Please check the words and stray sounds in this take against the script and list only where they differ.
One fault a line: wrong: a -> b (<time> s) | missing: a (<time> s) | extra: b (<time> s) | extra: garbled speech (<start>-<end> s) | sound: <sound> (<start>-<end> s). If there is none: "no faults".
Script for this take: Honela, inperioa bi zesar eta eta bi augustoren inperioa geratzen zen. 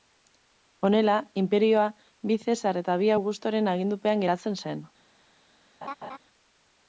missing: eta (3.0 s)
wrong: inperioa -> agindupean (3.8 s)
sound: laugh (5.8-6.2 s)